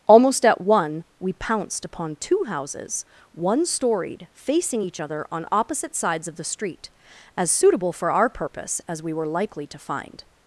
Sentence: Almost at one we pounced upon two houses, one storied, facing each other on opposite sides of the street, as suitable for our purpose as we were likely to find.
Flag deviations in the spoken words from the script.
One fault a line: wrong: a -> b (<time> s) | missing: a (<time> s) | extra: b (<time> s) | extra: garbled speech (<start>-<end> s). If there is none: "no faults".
no faults